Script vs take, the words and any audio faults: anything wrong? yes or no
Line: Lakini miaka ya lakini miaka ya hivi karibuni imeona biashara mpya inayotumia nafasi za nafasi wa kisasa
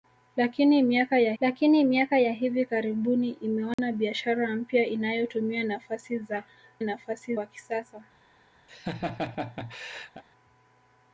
yes